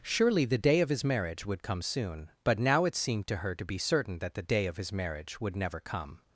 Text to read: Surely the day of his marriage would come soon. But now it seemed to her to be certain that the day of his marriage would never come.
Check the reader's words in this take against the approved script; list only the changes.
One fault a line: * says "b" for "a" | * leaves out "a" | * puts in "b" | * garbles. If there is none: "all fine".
all fine